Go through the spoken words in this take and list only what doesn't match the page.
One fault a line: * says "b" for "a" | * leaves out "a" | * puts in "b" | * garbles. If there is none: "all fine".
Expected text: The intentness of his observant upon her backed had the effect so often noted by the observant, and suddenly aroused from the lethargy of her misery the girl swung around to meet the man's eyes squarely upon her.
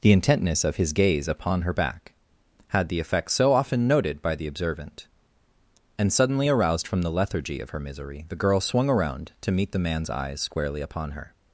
* says "gaze" for "observant"
* says "back" for "backed"